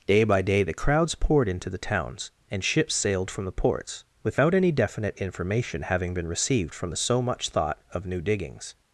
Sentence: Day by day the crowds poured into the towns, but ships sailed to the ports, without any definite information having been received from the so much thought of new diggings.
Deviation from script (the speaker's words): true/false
true